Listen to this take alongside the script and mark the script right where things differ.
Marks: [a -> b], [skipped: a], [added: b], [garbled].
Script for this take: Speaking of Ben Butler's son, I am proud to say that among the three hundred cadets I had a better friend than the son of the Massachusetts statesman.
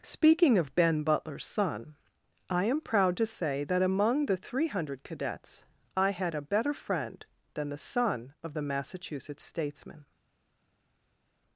Speaking of Ben Butler's son, I am proud to say that among the three hundred cadets I had a better friend than the son of the Massachusetts statesman.